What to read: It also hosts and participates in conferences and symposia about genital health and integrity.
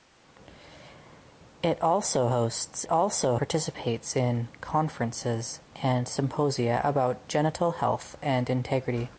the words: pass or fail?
fail